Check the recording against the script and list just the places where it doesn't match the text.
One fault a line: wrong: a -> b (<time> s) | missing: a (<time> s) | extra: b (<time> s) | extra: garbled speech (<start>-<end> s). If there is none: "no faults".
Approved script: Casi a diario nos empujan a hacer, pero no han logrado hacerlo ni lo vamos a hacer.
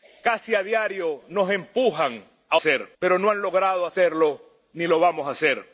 no faults